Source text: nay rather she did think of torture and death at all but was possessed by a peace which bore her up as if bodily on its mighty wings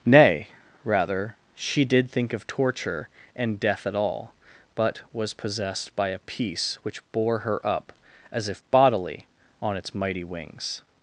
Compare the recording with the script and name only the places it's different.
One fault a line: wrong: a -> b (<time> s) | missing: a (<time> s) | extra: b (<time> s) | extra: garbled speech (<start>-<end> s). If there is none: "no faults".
no faults